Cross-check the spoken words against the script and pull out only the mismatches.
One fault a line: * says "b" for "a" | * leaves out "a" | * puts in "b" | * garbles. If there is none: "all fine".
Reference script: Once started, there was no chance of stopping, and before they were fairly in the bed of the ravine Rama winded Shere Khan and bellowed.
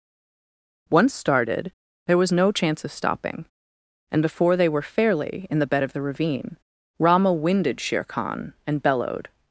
all fine